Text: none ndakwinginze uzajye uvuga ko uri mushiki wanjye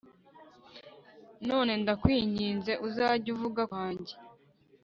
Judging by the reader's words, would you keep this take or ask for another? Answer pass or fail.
fail